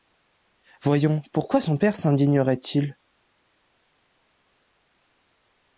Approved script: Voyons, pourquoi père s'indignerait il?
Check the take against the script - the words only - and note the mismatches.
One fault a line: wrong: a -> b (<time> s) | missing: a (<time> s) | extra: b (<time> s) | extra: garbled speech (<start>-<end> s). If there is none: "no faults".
extra: son (1.6 s)